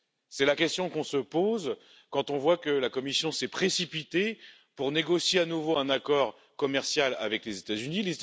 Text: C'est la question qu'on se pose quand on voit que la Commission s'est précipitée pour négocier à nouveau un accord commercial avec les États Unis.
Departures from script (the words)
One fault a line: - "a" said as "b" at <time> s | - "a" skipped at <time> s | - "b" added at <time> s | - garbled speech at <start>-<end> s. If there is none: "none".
none